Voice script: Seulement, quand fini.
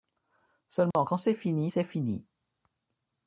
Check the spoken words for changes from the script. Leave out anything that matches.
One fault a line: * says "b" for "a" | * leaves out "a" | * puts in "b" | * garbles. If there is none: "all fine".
* puts in "c'est fini c'est"